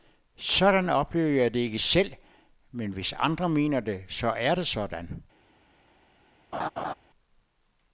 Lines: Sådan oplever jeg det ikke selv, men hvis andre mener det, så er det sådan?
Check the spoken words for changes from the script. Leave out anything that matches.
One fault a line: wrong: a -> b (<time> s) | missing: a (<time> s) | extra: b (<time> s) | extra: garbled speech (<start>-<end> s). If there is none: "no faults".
no faults